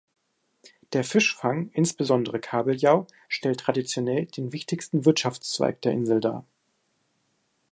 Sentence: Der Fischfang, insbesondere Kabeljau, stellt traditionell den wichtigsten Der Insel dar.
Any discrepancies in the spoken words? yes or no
yes